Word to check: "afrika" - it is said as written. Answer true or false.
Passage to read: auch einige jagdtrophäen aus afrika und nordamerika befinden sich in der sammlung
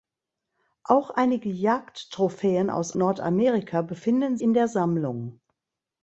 false